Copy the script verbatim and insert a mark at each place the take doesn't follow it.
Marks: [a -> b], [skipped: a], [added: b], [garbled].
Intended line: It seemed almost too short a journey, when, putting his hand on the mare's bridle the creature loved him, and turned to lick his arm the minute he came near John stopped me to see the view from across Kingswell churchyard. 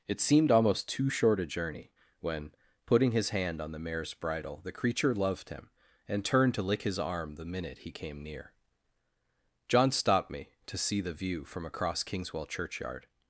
It seemed almost too short a journey, when, putting his hand on the mare's bridle the creature loved him, and turned to lick his arm the minute he came near John stopped me to see the view from across Kingswell churchyard.